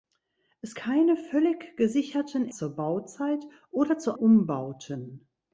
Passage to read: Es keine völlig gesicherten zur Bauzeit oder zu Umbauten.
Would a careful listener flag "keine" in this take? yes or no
no